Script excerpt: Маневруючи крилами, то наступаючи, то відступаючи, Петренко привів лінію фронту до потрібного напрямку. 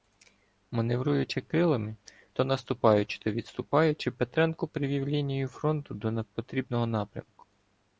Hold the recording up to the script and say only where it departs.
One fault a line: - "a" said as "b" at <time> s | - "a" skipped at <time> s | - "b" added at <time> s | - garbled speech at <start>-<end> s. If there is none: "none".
none